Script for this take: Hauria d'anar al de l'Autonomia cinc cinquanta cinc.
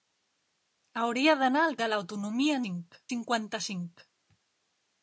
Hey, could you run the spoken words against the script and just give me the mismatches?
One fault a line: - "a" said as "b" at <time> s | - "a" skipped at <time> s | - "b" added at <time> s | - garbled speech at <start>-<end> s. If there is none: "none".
none